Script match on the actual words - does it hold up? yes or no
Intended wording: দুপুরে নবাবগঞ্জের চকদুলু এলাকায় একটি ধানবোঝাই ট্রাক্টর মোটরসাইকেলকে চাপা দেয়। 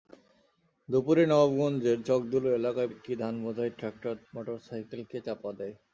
yes